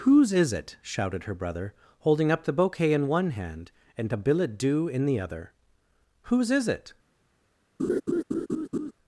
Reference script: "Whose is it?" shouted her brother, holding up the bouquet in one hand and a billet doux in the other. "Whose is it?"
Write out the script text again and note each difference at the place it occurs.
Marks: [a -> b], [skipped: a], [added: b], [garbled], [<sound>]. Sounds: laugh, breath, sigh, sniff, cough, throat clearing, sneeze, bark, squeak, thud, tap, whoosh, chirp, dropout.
"Whose is it?" shouted her brother, holding up the bouquet in one hand and a billet doux in the other. "Whose is it?" [laugh]